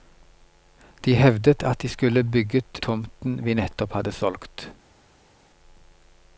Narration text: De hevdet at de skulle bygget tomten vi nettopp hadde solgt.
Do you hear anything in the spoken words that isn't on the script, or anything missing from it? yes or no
no